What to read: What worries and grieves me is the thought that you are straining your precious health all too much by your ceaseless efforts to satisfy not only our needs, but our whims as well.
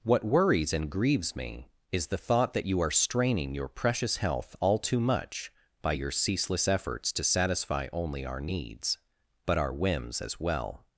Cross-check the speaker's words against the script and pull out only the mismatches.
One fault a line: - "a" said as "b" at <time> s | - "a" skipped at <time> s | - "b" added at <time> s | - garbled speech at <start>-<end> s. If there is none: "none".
- "not" skipped at 7.9 s